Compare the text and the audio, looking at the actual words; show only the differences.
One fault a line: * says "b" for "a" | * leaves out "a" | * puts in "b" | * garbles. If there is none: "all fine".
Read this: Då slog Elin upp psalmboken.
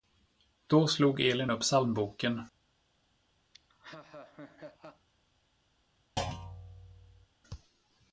all fine